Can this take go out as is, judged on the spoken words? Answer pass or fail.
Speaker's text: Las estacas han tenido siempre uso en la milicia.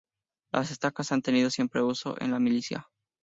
pass